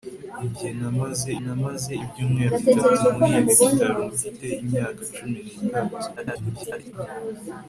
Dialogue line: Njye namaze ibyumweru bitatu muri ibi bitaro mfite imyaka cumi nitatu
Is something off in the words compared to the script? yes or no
yes